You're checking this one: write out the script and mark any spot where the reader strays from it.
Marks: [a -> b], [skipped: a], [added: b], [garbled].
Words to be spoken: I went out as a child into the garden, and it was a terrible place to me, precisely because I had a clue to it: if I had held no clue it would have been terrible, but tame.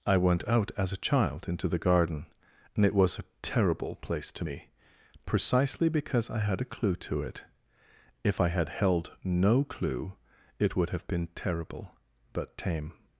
I went out as a child into the garden, and it was a terrible place to me, precisely because I had a clue to it: if I had held no clue it would have been terrible, but tame.